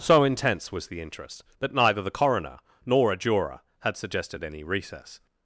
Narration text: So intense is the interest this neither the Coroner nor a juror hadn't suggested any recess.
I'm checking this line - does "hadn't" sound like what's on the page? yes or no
no